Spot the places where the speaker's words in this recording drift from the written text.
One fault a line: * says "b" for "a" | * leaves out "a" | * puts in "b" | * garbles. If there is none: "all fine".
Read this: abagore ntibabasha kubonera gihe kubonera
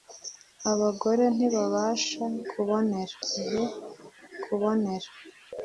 all fine